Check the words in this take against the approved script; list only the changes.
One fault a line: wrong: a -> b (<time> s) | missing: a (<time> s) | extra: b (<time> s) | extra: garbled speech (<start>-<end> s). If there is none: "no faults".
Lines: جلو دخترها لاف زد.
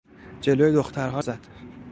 missing: لاف (1.2 s)